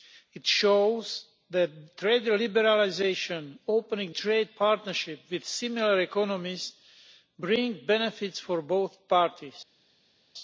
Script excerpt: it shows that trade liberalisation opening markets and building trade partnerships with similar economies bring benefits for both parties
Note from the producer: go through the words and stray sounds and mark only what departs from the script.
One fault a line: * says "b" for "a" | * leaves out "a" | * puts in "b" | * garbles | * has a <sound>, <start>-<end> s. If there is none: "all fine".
* leaves out "markets and building"